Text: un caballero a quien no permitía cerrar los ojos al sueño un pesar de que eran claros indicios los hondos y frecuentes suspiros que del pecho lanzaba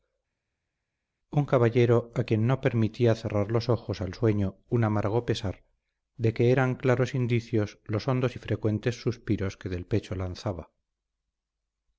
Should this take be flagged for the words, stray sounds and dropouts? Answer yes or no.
yes